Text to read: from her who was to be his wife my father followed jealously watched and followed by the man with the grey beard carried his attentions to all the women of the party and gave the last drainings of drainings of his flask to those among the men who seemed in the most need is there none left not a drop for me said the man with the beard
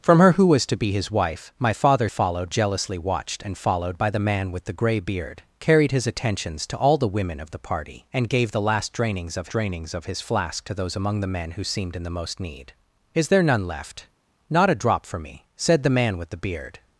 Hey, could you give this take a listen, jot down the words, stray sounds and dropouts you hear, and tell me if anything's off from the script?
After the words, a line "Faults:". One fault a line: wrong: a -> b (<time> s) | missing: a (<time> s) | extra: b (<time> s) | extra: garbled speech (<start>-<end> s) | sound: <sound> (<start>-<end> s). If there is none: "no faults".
from her who was to be his wife my father followed jealously watched and followed by the man with the grey beard carried his attentions to all the women of the party and gave the last drainings of drainings of his flask to those among the men who seemed in the most need is there none left not a drop for me said the man with the beard
Faults:
no faults